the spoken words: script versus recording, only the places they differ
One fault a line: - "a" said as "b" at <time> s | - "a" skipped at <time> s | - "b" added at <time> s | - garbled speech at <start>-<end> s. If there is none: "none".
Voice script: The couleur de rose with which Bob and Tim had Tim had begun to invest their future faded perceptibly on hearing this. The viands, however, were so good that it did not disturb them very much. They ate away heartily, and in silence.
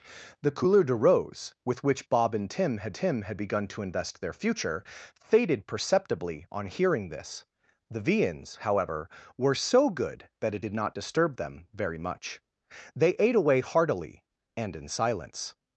none